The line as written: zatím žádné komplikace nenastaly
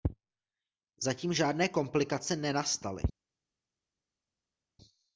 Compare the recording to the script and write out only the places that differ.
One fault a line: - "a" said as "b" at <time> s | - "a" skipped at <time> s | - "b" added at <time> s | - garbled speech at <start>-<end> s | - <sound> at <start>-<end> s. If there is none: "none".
none